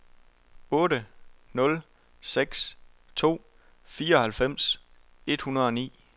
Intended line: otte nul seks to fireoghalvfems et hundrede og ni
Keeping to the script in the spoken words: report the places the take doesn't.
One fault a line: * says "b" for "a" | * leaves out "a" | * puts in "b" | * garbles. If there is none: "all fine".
all fine